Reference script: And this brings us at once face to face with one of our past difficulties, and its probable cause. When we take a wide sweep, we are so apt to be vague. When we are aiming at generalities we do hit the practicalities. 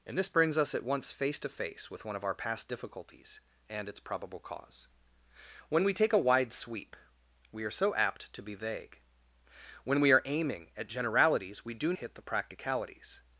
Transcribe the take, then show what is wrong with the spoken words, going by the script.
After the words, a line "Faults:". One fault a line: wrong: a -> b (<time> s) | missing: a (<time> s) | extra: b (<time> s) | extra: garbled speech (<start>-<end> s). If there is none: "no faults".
And this brings us at once face to face with one of our past difficulties, and its probable cause. When we take a wide sweep, we are so apt to be vague. When we are aiming at generalities we do hit the practicalities.
Faults:
no faults